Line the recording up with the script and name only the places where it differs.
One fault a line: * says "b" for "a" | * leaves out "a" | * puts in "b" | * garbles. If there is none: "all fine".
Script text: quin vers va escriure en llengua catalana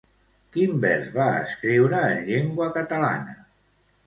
all fine